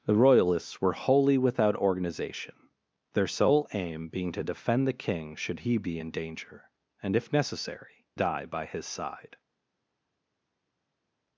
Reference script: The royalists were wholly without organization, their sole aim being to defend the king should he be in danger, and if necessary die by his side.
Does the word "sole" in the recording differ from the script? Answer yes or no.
no